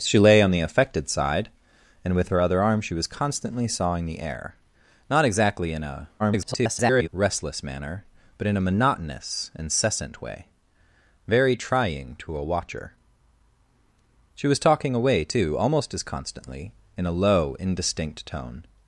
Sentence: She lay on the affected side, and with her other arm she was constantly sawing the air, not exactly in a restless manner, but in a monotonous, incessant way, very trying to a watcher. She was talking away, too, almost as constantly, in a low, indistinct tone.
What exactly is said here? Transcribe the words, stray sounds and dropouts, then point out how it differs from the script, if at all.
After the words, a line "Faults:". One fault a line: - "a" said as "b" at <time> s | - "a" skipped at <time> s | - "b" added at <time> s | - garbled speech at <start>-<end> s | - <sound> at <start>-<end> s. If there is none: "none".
She lay on the affected side, and with her other arm she was constantly sawing the air, not exactly in a [garbled] restless manner, but in a monotonous, incessant way, very trying to a watcher. She was talking away, too, almost as constantly, in a low, indistinct tone.
Faults:
- garbled speech at 6.2-7.1 s